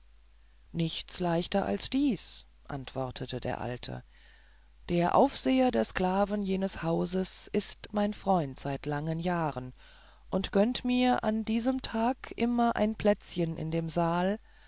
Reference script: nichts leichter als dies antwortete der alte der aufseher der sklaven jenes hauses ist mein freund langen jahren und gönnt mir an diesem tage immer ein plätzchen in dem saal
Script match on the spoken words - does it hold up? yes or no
no